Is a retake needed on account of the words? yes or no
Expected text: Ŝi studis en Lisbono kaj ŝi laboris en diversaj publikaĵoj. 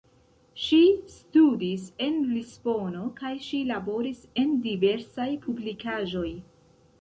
no